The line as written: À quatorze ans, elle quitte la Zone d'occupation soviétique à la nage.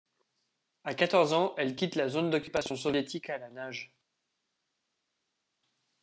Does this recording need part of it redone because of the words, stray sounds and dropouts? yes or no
no